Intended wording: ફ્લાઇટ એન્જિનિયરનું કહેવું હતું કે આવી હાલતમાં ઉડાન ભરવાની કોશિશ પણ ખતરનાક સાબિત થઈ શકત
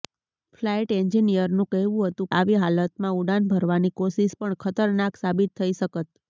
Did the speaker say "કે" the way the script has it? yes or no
no